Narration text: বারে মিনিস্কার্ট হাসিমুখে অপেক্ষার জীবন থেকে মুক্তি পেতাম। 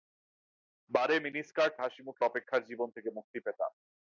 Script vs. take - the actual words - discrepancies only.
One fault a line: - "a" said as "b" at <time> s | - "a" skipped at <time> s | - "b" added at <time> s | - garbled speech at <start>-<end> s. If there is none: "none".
none